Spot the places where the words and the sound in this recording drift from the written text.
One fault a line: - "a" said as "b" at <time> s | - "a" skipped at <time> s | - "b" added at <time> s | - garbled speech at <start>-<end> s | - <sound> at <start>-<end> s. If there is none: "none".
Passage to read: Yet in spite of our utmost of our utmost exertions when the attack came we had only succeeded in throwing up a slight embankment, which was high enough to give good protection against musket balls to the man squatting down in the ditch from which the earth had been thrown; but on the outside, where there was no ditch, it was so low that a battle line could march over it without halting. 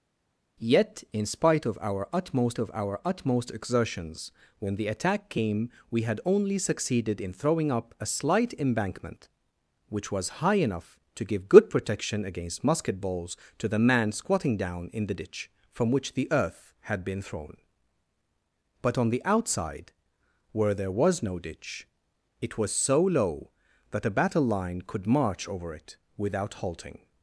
none